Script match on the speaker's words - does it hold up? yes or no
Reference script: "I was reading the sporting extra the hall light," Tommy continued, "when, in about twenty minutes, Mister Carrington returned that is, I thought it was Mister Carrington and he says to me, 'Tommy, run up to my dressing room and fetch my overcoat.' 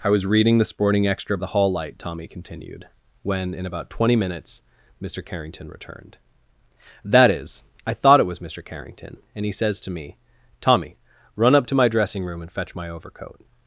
yes